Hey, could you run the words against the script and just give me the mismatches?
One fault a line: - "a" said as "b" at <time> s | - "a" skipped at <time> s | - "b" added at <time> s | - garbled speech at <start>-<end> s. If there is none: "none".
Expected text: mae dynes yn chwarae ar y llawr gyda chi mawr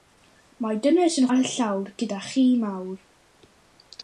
- "chwarae" skipped at 1.3 s